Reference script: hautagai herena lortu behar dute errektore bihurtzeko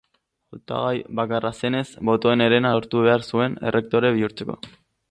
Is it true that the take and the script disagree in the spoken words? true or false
true